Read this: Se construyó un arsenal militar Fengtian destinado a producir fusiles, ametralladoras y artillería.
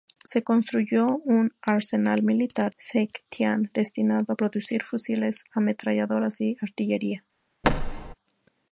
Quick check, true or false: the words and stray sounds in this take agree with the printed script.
false